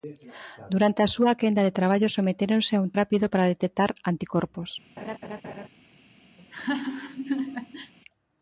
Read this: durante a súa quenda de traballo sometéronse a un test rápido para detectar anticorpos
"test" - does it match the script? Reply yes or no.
no